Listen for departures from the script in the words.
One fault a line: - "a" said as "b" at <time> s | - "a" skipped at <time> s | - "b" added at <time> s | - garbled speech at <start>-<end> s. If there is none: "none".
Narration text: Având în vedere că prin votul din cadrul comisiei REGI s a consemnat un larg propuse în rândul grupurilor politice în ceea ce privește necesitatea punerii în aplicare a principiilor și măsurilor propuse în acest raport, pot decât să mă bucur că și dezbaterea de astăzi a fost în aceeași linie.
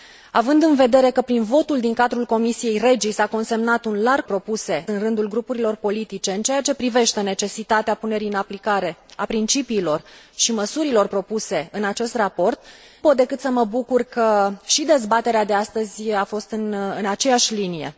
none